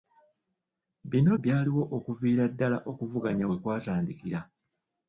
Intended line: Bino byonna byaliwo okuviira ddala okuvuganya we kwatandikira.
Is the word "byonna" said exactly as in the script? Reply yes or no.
no